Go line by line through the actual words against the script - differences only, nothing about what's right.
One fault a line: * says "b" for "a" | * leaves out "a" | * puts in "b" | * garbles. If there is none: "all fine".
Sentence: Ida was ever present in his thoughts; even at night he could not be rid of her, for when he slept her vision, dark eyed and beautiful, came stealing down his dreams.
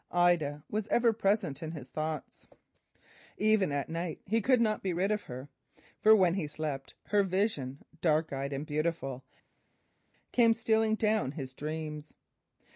all fine